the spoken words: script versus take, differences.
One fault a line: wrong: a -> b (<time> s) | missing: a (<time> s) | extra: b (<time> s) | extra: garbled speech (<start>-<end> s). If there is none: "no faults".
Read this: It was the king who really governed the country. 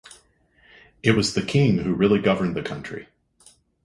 no faults